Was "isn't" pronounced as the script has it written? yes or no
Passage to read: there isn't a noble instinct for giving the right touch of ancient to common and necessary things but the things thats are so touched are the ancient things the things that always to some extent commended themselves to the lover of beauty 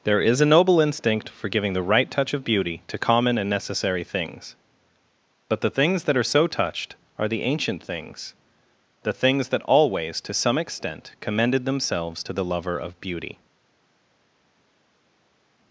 no